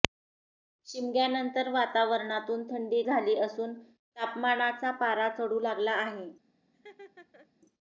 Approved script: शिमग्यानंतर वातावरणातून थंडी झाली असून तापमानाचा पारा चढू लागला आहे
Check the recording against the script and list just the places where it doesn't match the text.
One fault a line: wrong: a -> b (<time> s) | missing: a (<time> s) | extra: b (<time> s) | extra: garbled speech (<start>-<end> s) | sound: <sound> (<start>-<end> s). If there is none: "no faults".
sound: laugh (6.7-7.5 s)